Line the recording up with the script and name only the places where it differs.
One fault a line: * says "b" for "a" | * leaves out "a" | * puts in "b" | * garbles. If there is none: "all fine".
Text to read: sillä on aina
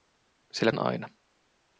all fine